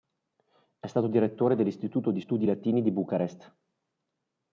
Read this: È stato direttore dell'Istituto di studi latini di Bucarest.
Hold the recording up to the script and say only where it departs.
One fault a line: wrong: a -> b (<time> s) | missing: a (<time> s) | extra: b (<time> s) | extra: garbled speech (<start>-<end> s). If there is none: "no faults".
no faults